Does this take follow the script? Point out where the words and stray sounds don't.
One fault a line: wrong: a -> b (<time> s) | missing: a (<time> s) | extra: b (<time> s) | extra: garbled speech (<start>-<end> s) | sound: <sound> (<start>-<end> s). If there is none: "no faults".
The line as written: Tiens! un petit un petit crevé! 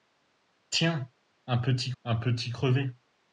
no faults